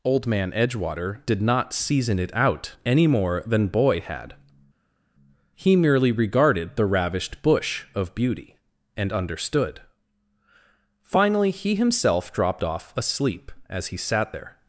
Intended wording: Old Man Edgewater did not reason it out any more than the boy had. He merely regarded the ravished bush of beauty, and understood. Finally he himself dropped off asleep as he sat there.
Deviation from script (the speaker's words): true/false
true